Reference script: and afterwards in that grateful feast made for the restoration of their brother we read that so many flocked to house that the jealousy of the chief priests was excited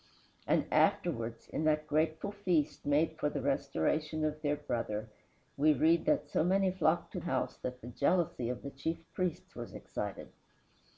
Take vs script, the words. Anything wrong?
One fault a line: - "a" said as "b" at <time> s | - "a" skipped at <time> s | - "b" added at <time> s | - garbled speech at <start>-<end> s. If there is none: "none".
none